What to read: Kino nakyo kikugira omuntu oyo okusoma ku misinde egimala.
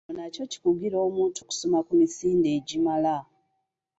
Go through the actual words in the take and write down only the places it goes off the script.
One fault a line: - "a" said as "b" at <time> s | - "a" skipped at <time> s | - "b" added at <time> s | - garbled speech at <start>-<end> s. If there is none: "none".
- "oyo" skipped at 1.4 s